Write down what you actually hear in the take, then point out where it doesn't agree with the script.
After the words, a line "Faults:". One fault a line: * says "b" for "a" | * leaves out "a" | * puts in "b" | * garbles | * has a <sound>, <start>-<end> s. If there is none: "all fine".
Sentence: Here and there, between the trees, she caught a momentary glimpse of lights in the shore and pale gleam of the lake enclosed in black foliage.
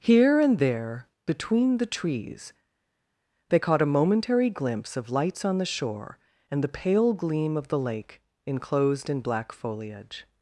Here and there, between the trees, they caught a momentary glimpse of lights on the shore and the pale gleam of the lake enclosed in black foliage.
Faults:
* says "they" for "she"
* says "on" for "in"
* puts in "the"